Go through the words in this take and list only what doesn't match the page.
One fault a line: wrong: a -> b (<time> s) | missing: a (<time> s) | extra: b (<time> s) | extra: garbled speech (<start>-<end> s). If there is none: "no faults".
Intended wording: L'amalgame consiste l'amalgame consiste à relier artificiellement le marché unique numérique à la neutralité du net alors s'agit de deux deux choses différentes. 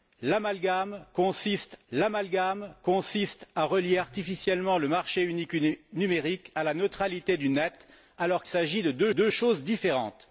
no faults